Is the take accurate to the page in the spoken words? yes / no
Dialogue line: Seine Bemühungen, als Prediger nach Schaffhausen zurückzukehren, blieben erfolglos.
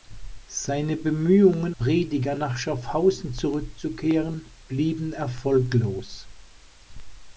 no